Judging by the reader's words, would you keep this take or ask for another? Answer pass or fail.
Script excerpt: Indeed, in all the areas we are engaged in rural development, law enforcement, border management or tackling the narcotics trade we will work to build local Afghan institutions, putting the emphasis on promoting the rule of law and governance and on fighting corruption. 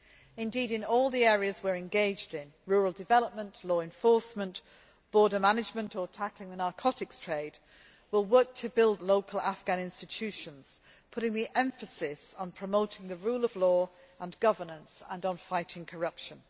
pass